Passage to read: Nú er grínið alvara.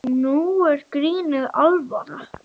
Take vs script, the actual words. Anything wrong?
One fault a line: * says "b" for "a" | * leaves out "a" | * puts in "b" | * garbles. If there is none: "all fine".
all fine